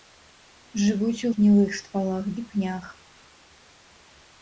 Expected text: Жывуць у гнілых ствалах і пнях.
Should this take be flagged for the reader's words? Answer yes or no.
no